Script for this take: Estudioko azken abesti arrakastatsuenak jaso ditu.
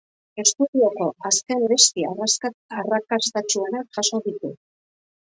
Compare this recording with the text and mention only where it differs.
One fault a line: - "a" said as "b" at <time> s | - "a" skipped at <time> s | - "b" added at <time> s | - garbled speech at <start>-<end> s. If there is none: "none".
none